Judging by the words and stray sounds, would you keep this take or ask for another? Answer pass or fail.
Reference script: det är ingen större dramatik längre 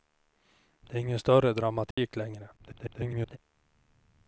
fail